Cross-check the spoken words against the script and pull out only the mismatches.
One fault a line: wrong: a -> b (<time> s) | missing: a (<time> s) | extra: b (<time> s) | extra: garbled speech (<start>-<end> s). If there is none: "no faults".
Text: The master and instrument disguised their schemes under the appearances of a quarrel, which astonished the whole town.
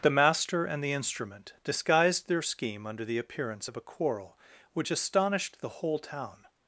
extra: the (0.8 s)
wrong: schemes -> scheme (2.4 s)
wrong: appearances -> appearance (3.2 s)